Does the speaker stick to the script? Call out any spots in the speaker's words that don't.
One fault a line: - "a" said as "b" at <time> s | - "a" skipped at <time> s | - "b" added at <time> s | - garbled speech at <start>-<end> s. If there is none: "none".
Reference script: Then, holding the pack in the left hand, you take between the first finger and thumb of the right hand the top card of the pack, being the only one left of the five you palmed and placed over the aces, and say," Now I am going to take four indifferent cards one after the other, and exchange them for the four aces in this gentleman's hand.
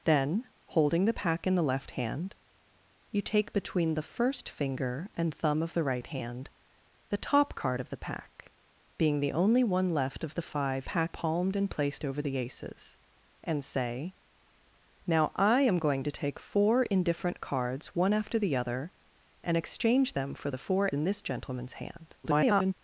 - "you" said as "pack" at 10.8 s
- "aces" skipped at 20.9 s
- garbled speech at 22.2-22.7 s